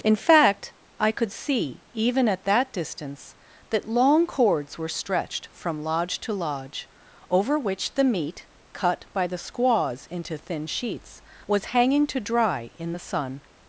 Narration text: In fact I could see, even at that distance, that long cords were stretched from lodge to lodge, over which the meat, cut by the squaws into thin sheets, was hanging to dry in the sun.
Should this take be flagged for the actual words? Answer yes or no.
no